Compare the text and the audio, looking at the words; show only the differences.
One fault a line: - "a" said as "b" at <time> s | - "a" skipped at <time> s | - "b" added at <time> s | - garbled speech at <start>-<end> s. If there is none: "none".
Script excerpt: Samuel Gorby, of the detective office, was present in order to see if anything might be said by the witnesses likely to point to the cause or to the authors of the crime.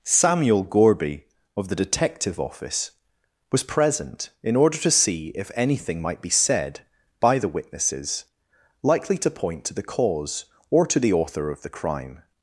- "authors" said as "author" at 11.1 s